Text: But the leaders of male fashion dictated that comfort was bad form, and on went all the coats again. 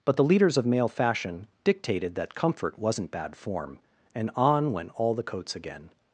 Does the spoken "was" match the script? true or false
false